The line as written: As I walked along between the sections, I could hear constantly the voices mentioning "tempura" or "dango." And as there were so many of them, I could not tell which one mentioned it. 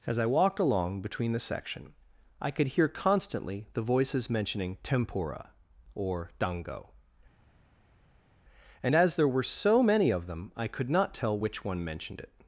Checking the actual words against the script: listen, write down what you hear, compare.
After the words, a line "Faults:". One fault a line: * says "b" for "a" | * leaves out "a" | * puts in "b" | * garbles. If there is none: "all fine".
As I walked along between the section, I could hear constantly the voices mentioning "tempura" or "dango." And as there were so many of them, I could not tell which one mentioned it.
Faults:
* says "section" for "sections"